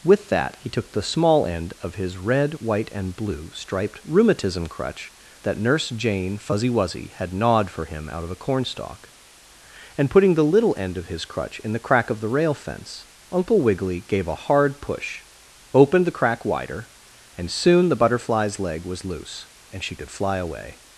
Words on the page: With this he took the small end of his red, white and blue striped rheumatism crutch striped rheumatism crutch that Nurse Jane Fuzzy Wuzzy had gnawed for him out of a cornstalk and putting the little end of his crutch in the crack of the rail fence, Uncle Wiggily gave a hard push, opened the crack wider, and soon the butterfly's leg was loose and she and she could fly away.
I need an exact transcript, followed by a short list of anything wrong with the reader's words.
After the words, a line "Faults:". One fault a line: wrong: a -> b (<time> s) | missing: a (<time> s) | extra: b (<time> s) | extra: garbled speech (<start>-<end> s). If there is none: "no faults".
With that he took the small end of his red, white and blue striped rheumatism crutch that Nurse Jane Fuzzy Wuzzy had gnawed for him out of a cornstalk and putting the little end of his crutch in the crack of the rail fence, Uncle Wiggily gave a hard push, opened the crack wider, and soon the butterfly's leg was loose and she could fly away.
Faults:
wrong: this -> that (0.3 s)
missing: striped rheumatism crutch (5.1 s)
missing: and she (20.0 s)